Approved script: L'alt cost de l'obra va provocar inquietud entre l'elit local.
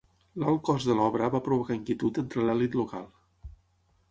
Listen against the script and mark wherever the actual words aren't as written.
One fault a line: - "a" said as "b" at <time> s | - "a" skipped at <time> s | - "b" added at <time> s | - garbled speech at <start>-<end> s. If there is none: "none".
none